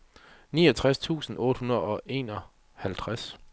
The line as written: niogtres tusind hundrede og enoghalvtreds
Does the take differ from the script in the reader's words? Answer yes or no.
yes